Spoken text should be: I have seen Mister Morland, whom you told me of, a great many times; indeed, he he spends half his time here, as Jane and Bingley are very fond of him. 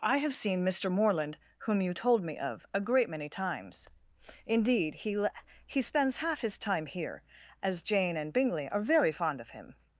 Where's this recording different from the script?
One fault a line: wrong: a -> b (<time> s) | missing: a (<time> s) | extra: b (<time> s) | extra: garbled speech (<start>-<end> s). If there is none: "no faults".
no faults